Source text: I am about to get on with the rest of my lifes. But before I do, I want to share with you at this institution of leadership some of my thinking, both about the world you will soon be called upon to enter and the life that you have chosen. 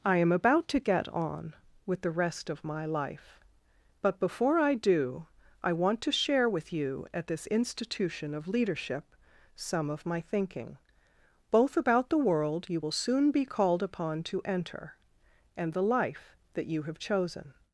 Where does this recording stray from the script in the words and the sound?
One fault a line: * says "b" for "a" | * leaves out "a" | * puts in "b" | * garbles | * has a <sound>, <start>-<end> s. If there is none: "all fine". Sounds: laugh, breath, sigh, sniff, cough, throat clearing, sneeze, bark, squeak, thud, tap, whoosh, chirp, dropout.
* says "life" for "lifes"